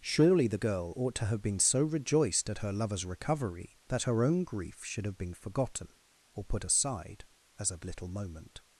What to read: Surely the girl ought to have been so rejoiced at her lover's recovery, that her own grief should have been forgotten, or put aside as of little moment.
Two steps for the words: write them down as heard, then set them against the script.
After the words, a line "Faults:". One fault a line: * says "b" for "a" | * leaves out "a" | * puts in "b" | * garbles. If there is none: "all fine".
Surely the girl ought to have been so rejoiced at her lover's recovery, that her own grief should have been forgotten, or put aside as of little moment.
Faults:
all fine